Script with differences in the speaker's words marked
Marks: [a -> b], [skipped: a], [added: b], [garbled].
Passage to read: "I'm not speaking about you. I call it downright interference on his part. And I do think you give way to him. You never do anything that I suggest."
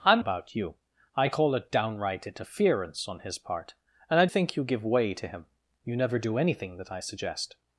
"I'm [skipped: not speaking] about you. I call it downright interference on his part. And I [skipped: do] think you give way to him. You never do anything that I suggest."